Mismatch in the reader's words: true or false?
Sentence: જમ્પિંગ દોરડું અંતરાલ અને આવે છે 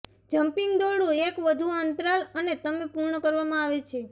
true